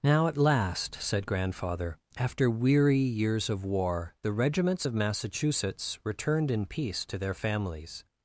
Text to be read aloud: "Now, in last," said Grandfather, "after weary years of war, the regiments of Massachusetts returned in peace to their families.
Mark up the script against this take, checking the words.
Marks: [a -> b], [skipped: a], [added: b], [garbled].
"Now, [in -> at] last," said Grandfather, "after weary years of war, the regiments of Massachusetts returned in peace to their families.